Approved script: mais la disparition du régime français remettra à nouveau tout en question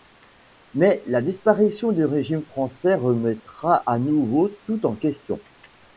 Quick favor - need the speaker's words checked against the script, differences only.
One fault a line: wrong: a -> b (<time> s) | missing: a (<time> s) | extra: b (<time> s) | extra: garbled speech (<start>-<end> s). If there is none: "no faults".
no faults